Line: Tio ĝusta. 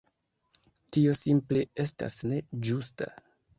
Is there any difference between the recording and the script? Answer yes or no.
yes